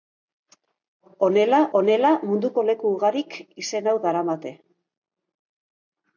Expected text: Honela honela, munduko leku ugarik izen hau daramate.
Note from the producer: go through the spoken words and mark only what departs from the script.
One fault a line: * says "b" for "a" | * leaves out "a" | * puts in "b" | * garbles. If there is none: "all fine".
all fine